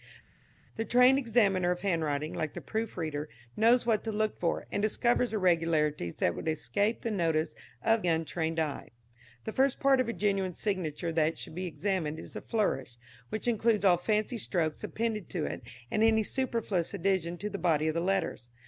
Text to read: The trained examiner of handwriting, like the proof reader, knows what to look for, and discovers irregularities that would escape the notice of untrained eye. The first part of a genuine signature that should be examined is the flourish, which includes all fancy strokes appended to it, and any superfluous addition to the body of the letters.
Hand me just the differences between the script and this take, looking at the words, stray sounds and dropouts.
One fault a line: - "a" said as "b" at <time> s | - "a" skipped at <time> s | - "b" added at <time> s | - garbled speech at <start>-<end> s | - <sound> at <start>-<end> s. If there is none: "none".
none